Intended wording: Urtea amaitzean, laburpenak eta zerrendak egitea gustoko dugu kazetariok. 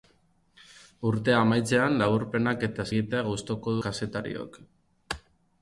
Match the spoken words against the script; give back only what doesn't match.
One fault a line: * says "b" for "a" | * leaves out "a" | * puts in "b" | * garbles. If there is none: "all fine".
* leaves out "zerrendak"
* leaves out "dugu"